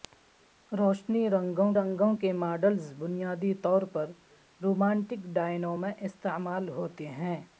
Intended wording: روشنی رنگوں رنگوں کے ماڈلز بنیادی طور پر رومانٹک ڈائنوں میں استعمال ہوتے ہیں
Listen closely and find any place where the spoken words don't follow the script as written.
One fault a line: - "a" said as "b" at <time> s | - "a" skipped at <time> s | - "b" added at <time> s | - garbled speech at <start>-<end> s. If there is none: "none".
none